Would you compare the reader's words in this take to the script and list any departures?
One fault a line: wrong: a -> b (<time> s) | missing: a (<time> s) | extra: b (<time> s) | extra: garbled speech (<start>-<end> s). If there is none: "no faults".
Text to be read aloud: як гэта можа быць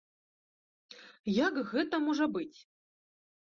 no faults